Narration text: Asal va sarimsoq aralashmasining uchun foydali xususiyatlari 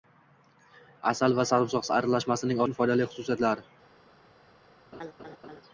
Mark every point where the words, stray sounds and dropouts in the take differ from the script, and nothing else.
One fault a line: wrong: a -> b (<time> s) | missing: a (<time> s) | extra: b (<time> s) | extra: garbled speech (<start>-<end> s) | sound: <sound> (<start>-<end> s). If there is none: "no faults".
sound: laugh (4.9-5.6 s)